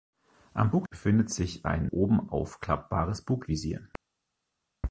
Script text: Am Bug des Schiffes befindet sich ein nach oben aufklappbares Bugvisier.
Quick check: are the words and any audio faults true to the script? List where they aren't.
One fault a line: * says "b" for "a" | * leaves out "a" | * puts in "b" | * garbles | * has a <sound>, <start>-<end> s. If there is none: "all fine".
* leaves out "des Schiffes"
* leaves out "nach"